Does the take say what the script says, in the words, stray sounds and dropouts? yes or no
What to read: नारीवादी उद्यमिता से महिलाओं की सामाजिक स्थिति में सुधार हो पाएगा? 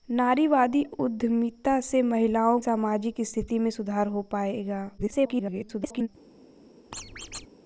no